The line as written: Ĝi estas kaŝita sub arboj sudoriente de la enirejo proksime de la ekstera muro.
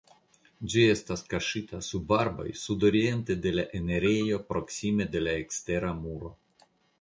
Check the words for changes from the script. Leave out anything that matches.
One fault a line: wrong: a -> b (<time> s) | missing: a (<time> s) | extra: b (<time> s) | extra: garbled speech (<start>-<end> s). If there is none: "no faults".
no faults